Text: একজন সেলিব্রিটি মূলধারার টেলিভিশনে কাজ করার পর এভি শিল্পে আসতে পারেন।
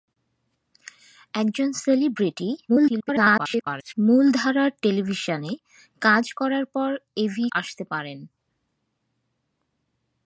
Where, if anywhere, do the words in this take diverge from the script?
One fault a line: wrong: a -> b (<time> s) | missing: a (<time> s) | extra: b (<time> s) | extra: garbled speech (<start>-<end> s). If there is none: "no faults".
extra: garbled speech (2.7-3.9 s)
missing: শিল্পে (7.5 s)